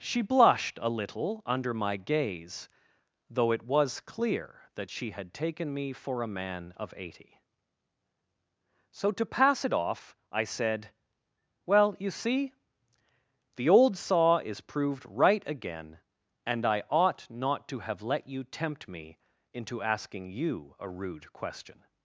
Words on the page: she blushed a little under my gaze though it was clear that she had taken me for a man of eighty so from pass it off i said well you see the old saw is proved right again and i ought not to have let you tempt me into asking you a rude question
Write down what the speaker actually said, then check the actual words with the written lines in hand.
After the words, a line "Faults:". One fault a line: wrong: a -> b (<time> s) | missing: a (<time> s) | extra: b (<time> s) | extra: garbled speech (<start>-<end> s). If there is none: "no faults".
she blushed a little under my gaze though it was clear that she had taken me for a man of eighty so to pass it off i said well you see the old saw is proved right again and i ought not to have let you tempt me into asking you a rude question
Faults:
wrong: from -> to (9.1 s)